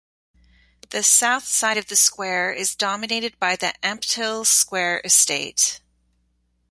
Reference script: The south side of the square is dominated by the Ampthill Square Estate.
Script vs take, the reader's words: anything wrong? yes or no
no